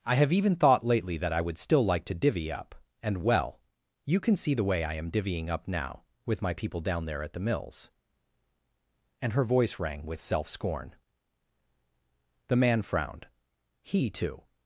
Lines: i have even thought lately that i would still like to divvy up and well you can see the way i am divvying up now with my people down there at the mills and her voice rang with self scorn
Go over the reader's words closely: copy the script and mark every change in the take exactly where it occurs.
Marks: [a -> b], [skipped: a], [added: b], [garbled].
i have even thought lately that i would still like to divvy up and well you can see the way i am divvying up now with my people down there at the mills and her voice rang with self scorn [added: the man frowned he too]